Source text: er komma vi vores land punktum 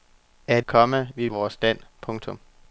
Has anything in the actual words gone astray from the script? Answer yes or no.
no